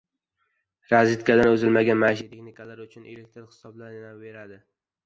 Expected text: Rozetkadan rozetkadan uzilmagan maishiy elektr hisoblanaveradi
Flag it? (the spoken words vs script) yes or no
yes